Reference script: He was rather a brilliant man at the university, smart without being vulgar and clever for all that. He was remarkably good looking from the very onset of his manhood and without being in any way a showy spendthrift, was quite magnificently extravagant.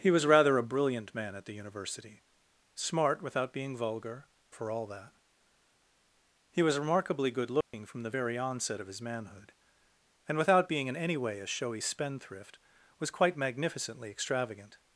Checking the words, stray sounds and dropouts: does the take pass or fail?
fail